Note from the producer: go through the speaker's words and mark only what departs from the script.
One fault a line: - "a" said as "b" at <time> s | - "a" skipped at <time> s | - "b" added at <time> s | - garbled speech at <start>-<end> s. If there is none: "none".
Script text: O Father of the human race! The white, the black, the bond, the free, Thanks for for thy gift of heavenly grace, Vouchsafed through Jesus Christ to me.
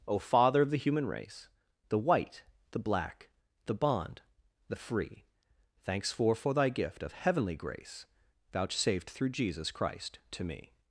none